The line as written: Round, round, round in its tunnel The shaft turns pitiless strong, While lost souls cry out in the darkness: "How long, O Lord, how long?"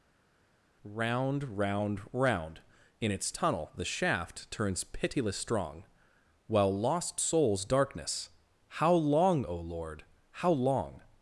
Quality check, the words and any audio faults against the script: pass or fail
fail